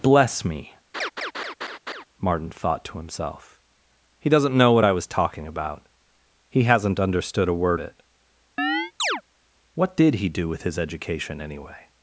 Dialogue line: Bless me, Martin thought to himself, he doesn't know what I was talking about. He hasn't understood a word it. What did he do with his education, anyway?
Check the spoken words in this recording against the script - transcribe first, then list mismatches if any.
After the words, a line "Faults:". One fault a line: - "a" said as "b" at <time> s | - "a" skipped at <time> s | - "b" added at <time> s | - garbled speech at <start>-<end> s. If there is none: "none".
Bless me, Martin thought to himself, he doesn't know what I was talking about. He hasn't understood a word it. What did he do with his education, anyway?
Faults:
none